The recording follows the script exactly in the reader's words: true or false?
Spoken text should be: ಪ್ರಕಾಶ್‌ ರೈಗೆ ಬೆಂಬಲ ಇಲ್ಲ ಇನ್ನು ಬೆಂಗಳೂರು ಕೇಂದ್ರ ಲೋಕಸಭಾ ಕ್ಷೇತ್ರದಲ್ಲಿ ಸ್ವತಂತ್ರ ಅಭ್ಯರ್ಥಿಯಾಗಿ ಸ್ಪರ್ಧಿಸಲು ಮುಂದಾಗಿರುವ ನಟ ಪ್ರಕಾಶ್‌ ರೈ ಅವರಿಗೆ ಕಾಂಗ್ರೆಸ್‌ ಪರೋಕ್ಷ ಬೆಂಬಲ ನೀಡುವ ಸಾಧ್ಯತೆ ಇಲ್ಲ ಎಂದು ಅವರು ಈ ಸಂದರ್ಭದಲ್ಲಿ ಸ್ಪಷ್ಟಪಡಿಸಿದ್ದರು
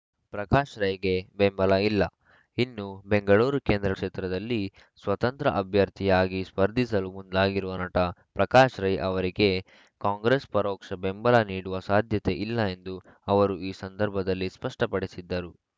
false